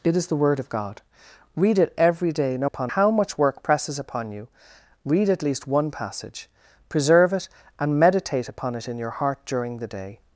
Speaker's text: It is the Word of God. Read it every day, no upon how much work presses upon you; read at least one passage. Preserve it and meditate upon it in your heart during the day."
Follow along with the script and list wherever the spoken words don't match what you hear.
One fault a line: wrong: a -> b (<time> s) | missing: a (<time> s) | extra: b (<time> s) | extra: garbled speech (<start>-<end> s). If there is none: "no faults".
no faults